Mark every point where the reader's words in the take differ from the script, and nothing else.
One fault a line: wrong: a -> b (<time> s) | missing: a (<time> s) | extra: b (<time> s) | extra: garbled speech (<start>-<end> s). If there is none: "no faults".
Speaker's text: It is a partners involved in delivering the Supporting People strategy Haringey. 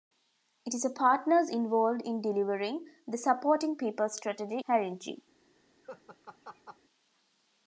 no faults